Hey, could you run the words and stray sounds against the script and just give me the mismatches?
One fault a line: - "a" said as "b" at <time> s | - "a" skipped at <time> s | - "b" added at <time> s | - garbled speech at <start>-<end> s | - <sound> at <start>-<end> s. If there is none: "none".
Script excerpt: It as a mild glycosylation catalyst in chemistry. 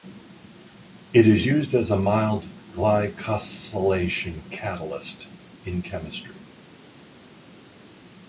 - "is used" added at 1.3 s